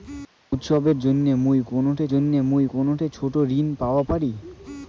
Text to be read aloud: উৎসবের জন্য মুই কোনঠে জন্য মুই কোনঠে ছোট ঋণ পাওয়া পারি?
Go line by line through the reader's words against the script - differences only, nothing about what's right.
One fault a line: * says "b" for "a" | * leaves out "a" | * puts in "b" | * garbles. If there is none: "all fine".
all fine